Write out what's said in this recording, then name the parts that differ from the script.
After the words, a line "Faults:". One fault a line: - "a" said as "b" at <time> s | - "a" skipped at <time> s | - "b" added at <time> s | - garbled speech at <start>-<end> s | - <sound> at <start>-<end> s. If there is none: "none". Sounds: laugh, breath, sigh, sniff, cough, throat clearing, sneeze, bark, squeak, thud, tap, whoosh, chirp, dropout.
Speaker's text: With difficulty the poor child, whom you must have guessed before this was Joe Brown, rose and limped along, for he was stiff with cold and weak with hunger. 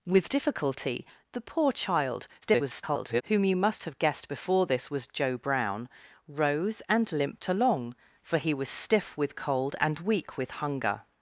With difficulty the poor child, [garbled] whom you must have guessed before this was Joe Brown, rose and limped along, for he was stiff with cold and weak with hunger.
Faults:
- garbled speech at 2.4-3.2 s